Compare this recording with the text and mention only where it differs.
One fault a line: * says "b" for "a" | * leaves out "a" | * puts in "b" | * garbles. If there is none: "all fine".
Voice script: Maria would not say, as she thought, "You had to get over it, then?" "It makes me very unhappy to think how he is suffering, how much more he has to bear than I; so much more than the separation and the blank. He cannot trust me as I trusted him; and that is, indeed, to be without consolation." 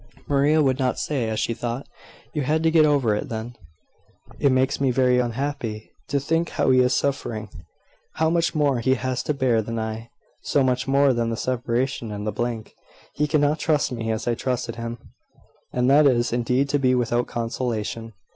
all fine